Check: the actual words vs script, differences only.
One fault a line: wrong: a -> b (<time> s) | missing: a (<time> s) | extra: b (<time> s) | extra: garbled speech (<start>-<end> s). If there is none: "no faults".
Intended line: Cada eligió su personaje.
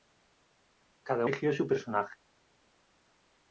no faults